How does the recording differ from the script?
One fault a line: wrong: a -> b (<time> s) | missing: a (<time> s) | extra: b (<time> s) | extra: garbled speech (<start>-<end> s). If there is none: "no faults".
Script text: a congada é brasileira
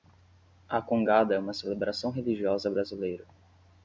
extra: uma celebração religiosa (1.4 s)